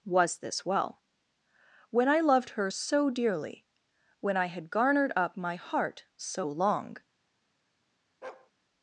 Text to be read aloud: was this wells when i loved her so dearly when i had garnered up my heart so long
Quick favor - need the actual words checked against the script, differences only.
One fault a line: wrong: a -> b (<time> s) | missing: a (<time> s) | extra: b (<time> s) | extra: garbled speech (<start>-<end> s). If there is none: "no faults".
wrong: wells -> well (0.7 s)